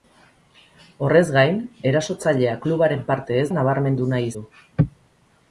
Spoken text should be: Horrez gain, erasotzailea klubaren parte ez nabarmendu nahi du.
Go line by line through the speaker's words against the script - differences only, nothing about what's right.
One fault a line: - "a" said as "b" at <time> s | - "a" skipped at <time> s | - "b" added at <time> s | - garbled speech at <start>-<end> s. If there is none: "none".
none